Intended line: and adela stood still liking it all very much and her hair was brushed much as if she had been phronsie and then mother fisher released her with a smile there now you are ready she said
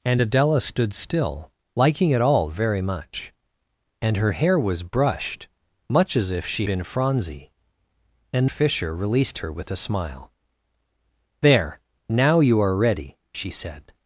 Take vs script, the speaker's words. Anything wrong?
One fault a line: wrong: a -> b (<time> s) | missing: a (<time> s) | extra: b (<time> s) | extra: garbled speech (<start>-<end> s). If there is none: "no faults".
missing: had (6.7 s)
missing: then mother (8.5 s)